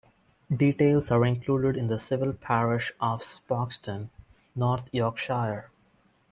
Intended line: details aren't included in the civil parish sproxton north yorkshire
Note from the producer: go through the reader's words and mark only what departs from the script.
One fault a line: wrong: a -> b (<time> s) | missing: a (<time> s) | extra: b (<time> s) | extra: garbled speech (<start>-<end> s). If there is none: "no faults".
wrong: aren't -> are (1.1 s)
extra: of (3.0 s)